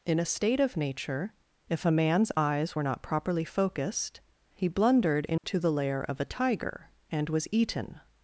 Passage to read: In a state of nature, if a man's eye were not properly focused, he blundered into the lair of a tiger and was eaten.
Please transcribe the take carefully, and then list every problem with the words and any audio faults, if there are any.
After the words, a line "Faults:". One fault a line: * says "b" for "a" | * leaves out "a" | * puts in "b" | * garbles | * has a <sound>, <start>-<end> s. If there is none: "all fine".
In a state of nature, if a man's eyes were not properly focused, he blundered into the lair of a tiger and was eaten.
Faults:
* says "eyes" for "eye"
* has a dropout, 5.4-5.4 s